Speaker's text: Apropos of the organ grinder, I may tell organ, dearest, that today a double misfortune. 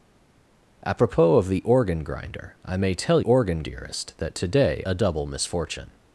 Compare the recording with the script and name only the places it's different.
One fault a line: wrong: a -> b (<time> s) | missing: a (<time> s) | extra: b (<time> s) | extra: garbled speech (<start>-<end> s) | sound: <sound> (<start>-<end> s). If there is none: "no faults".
no faults